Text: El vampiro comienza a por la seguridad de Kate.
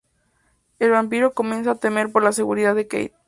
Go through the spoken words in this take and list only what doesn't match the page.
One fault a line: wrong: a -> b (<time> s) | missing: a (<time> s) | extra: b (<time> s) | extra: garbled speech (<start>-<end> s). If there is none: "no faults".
extra: temer (1.8 s)